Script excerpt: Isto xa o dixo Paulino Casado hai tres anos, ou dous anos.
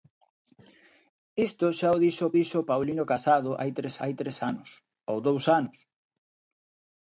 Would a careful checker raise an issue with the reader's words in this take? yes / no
yes